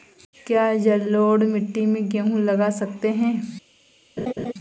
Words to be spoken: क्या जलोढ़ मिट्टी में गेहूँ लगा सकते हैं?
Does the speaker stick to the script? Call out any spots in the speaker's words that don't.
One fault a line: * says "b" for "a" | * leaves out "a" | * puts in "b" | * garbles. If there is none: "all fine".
all fine